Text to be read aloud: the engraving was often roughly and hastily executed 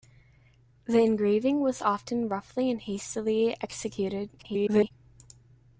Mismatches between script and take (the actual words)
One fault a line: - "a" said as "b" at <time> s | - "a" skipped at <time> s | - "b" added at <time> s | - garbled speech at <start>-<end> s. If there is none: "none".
- garbled speech at 4.4-4.9 s